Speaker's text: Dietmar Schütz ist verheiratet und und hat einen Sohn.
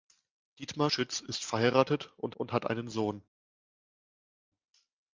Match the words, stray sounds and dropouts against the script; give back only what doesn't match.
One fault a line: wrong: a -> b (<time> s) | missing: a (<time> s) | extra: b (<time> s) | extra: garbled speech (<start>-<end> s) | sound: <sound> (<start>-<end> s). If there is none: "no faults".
no faults